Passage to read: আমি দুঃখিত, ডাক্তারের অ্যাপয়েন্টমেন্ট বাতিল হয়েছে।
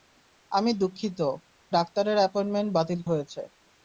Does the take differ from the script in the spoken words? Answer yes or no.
no